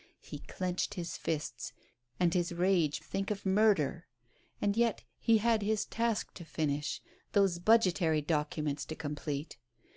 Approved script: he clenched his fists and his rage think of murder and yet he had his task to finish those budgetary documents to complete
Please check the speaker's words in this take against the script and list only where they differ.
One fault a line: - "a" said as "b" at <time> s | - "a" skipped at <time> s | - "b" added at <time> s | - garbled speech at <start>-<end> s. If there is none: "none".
none